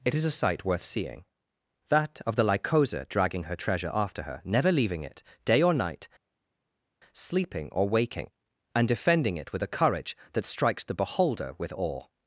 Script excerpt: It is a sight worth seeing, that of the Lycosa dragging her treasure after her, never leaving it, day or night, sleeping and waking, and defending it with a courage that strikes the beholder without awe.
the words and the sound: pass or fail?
fail